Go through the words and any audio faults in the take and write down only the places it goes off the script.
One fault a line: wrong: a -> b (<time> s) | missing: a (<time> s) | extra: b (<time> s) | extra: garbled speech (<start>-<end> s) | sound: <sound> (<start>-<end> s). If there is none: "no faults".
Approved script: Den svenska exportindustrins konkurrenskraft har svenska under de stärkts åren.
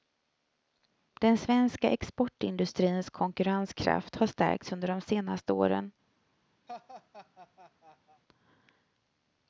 wrong: svenska -> stärkts (4.3 s)
wrong: stärkts -> senaste (5.0 s)
sound: laugh (6.7-8.2 s)